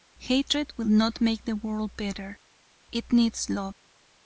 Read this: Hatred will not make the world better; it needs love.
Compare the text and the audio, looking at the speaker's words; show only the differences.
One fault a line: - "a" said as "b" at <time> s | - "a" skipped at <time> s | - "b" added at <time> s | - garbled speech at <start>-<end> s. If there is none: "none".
none